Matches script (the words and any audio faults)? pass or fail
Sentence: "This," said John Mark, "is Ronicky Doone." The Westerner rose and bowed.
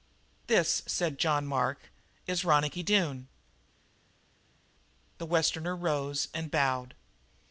pass